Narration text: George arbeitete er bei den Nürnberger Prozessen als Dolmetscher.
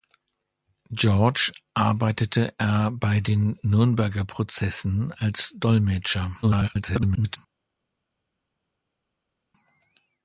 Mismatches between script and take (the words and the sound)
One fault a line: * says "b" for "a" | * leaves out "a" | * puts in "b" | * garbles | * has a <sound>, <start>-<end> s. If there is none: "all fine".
* garbles